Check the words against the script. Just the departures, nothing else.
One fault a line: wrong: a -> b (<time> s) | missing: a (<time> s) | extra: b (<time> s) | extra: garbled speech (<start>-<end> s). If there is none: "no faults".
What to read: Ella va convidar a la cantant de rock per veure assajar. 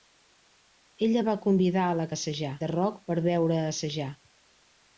wrong: cantant -> assajar (2.1 s)